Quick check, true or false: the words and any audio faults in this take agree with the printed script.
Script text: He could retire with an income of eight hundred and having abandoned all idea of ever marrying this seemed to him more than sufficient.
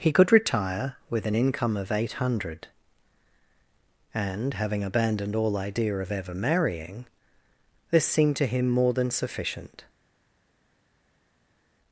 true